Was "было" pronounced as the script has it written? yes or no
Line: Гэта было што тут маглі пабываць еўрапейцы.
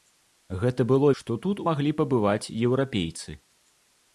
yes